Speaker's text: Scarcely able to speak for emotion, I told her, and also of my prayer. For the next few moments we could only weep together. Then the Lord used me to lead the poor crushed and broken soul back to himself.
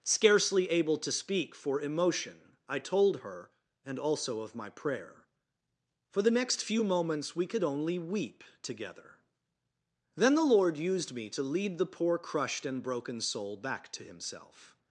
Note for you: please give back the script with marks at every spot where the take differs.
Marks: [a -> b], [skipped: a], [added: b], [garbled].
Scarcely able to speak for emotion, I told her, and also of my prayer. For the next few moments we could only weep together. Then the Lord used me to lead the poor crushed and broken soul back to himself.